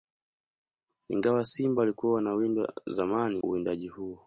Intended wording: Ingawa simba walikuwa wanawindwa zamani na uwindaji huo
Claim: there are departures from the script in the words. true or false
true